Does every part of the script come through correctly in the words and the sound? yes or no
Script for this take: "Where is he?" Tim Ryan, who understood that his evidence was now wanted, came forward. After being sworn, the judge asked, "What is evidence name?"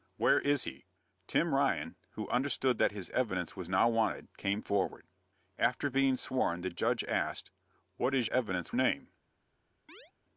no